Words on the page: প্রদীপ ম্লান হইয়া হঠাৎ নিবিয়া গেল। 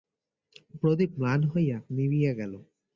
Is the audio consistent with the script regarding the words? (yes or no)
no